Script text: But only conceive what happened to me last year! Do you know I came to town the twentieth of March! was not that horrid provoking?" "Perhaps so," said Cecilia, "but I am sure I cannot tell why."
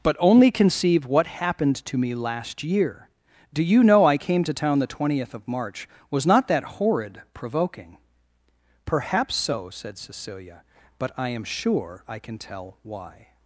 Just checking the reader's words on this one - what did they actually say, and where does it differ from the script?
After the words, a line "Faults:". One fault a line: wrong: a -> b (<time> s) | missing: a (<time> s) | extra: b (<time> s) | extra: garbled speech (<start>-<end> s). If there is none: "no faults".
But only conceive what happened to me last year! Do you know I came to town the twentieth of March! was not that horrid provoking?" "Perhaps so," said Cecilia, "but I am sure I can tell why."
Faults:
wrong: cannot -> can (12.2 s)